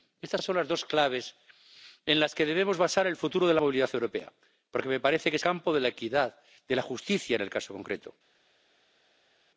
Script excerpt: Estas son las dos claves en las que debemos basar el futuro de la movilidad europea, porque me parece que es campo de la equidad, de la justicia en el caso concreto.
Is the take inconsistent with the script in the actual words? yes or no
no